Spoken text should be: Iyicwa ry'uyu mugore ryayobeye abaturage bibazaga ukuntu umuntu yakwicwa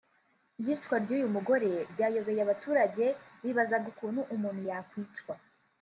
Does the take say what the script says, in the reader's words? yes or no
yes